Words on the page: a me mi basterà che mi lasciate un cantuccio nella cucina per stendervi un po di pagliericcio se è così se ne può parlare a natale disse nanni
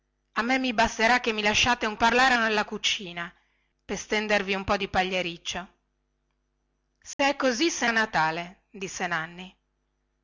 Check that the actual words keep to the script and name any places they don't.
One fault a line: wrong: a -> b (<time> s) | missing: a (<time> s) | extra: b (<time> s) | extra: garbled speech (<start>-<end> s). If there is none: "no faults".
wrong: cantuccio -> parlare (2.0 s)
missing: ne può parlare (7.9 s)